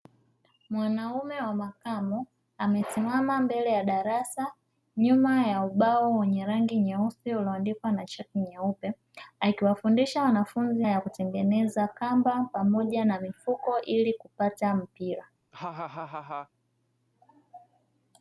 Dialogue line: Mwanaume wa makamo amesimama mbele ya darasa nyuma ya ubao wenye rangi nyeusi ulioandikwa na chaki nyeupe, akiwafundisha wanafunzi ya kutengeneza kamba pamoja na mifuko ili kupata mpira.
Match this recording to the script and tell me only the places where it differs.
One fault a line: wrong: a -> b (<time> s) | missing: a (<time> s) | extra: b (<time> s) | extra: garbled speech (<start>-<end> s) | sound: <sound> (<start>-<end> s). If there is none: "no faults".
sound: laugh (15.5-16.5 s)